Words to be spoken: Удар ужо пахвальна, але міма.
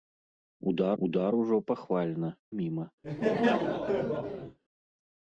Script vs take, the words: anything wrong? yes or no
yes